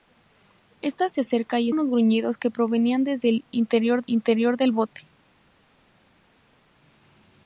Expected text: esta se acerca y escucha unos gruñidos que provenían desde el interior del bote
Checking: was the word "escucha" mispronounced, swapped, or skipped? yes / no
yes